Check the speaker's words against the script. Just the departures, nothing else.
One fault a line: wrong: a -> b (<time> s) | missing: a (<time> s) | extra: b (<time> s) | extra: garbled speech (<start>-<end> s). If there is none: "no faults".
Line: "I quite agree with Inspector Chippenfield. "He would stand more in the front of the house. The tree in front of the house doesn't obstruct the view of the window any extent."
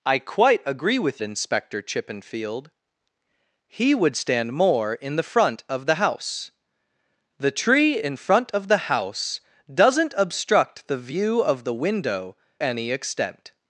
no faults